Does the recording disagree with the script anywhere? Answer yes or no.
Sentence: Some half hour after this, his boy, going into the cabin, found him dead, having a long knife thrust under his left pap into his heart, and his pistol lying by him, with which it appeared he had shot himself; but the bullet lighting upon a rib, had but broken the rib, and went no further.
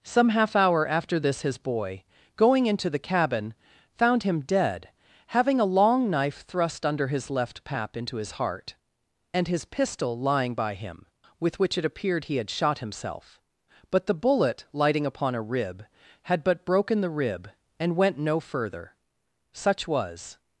yes